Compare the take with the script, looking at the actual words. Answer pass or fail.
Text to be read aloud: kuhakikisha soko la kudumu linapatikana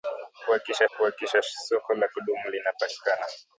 fail